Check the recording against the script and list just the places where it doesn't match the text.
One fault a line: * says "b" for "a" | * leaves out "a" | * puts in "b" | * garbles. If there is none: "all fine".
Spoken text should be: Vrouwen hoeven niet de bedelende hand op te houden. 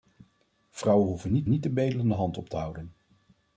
* puts in "niet"